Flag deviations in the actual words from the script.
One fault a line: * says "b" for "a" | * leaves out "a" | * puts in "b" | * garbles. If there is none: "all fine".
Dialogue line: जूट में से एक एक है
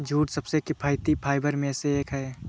* puts in "सबसे किफायती फाइबर"
* leaves out "एक"